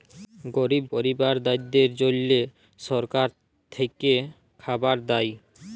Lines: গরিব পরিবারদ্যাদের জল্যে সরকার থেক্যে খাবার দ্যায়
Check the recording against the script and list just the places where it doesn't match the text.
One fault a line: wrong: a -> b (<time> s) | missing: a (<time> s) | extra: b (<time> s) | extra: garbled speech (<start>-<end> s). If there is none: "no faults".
no faults